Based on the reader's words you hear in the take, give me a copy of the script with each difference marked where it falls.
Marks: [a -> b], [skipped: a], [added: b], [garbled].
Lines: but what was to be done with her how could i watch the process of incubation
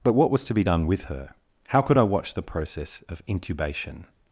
but what was to be done with her how could i watch the process of incubation